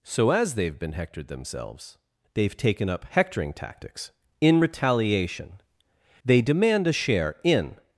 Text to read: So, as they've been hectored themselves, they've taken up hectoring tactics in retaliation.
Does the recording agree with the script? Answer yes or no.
no